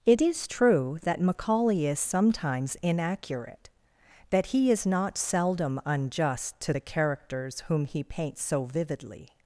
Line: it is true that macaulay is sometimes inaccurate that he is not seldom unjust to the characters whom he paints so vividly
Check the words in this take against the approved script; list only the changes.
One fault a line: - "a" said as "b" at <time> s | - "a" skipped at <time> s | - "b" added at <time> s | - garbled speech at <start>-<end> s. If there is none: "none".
none